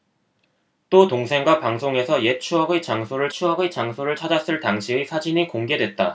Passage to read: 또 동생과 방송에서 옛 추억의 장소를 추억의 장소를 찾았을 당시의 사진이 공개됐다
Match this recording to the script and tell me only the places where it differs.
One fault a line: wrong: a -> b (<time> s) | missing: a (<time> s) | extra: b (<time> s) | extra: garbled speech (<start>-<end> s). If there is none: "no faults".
no faults